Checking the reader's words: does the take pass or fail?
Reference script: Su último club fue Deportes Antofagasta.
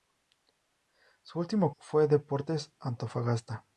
fail